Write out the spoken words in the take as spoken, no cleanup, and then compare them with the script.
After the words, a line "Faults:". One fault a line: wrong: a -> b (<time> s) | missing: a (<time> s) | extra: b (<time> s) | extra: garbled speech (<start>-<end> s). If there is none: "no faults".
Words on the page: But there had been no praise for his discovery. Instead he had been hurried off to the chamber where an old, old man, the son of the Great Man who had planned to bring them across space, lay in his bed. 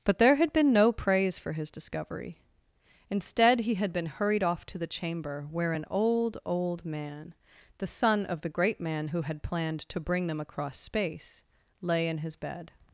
But there had been no praise for his discovery. Instead he had been hurried off to the chamber where an old, old man, the son of the Great Man who had planned to bring them across space, lay in his bed.
Faults:
no faults